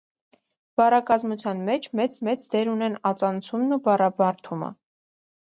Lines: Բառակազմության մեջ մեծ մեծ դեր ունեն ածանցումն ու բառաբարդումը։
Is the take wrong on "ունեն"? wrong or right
right